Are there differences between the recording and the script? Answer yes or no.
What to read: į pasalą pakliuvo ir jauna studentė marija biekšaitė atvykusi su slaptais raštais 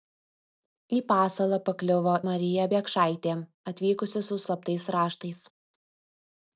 yes